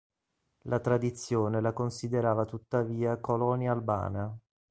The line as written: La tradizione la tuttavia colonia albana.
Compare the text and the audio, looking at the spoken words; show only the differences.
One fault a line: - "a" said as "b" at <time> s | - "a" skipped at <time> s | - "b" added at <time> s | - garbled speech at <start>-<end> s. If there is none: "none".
- "considerava" added at 1.7 s